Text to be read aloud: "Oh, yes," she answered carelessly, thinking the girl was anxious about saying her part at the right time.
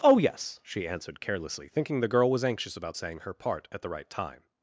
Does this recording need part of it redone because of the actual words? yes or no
no